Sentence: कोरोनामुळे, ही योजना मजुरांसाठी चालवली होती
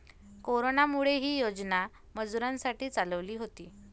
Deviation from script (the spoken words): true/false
false